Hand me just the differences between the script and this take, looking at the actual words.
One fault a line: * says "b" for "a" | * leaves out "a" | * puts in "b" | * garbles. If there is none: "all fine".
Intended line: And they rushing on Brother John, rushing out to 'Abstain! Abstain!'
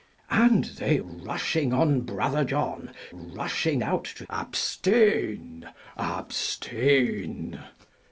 all fine